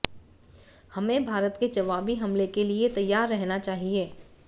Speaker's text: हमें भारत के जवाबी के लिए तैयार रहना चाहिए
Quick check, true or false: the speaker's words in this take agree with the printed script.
false